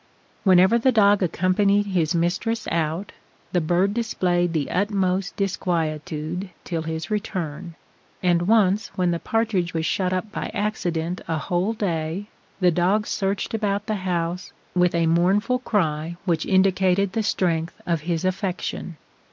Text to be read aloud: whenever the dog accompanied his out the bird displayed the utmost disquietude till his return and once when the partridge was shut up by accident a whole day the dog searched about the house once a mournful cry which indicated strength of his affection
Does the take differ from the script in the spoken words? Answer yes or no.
yes